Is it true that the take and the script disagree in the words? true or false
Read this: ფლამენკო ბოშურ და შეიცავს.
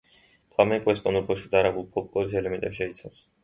true